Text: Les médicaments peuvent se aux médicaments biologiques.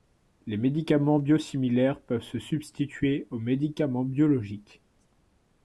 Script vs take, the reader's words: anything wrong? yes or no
yes